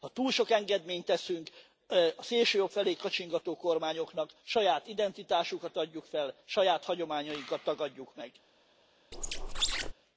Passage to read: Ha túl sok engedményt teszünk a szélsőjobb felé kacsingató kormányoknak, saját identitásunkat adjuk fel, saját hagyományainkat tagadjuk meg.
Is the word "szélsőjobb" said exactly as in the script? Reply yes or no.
yes